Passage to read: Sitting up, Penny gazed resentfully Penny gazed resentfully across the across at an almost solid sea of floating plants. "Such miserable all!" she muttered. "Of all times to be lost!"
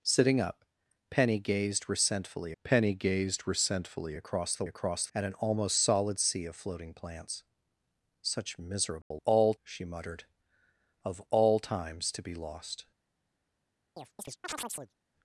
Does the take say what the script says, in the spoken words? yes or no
yes